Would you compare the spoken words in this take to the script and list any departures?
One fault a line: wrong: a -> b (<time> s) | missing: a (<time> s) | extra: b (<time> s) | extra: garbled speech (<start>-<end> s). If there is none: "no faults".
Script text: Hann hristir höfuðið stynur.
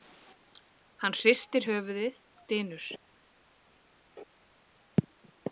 no faults